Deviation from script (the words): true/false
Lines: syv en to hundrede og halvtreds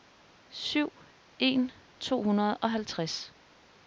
false